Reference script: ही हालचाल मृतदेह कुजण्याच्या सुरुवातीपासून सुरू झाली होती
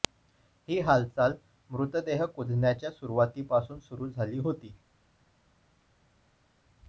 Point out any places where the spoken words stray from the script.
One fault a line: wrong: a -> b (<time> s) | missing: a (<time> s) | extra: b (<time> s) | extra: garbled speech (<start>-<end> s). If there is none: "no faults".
no faults